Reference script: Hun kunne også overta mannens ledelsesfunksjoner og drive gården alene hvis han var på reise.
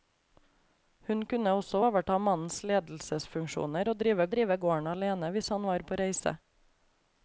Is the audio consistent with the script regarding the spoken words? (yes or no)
no